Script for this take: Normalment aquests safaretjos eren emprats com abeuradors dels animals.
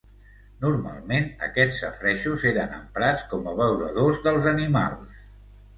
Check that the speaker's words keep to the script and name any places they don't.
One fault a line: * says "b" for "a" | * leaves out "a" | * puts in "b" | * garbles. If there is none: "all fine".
all fine